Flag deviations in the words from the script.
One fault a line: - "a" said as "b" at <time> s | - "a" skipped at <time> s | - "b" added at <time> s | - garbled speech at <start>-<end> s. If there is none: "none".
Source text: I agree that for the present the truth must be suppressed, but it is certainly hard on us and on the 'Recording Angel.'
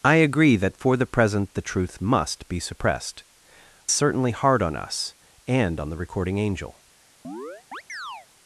- "but it is" skipped at 3.2 s